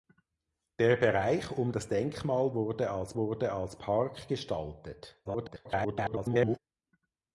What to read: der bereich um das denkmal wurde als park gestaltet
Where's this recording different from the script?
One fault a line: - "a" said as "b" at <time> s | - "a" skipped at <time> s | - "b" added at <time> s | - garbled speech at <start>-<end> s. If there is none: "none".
- "wurde als" added at 3.2 s
- garbled speech at 5.2-6.6 s